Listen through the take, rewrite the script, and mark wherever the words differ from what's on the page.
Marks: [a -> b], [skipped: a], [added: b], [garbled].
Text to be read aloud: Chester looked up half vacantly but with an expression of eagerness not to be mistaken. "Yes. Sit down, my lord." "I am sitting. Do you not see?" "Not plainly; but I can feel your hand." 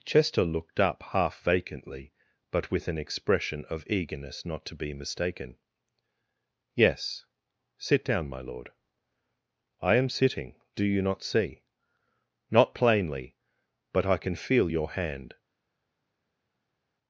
Chester looked up half vacantly but with an expression of eagerness not to be mistaken. "Yes. Sit down, my lord." "I am sitting. Do you not see?" "Not plainly; but I can feel your hand."